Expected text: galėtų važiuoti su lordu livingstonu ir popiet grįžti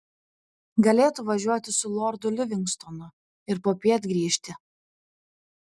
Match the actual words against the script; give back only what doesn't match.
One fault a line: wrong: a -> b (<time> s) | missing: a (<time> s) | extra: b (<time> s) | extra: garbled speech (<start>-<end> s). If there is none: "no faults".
no faults